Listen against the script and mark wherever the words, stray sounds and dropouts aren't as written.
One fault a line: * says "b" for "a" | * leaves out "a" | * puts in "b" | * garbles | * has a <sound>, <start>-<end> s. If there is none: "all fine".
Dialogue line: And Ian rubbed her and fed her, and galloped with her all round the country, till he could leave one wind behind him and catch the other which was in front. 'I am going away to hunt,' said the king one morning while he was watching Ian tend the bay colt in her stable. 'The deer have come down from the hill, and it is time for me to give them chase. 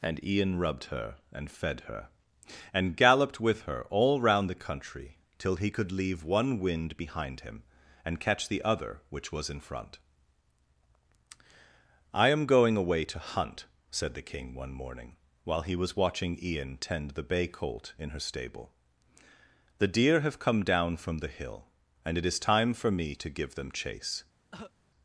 * has a cough, 24.5-24.7 s